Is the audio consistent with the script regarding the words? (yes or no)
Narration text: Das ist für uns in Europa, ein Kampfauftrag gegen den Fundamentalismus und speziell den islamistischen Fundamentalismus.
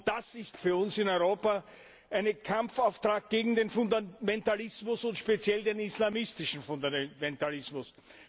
yes